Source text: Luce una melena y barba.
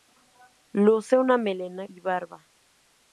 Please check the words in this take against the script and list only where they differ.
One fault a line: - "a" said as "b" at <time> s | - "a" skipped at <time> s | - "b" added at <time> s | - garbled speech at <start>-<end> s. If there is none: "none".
none